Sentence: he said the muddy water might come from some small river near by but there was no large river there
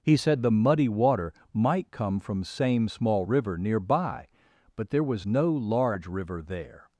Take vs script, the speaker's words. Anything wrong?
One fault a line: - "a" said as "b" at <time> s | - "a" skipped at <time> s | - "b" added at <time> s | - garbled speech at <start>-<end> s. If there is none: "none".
- "some" said as "same" at 2.4 s